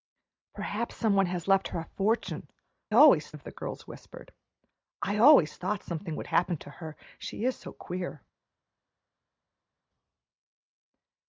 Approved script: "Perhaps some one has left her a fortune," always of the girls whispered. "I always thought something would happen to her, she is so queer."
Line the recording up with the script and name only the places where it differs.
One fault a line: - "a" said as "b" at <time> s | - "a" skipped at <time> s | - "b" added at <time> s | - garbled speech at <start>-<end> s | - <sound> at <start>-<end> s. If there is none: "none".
none